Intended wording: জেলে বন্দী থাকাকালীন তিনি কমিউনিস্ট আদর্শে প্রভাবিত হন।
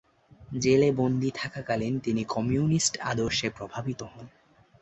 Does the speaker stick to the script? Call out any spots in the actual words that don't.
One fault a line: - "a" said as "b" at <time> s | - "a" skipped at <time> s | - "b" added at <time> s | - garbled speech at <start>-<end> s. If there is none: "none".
none